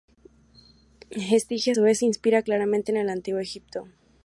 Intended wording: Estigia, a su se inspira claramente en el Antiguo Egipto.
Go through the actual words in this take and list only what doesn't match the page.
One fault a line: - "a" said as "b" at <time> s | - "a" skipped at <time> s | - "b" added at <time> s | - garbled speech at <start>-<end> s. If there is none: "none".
- "vez" added at 1.8 s